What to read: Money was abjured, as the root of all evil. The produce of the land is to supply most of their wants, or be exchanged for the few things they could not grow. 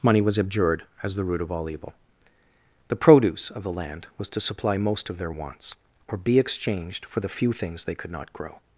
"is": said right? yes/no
no